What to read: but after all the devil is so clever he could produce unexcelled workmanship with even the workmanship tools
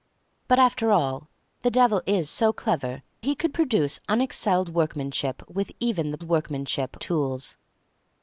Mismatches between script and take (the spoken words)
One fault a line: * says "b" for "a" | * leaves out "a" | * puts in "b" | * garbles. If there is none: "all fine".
all fine